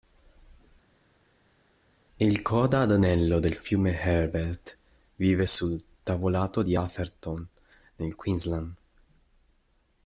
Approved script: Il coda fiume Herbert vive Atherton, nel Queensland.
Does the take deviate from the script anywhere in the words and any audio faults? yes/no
yes